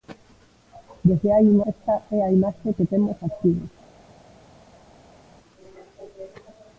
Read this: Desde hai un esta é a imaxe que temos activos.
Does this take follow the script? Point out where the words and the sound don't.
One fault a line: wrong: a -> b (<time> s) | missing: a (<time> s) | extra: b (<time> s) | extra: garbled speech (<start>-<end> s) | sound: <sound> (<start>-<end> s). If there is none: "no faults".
no faults